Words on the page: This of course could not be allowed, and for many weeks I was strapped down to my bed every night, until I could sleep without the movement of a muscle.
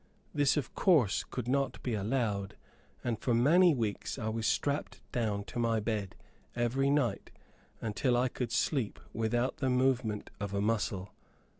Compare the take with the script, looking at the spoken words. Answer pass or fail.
pass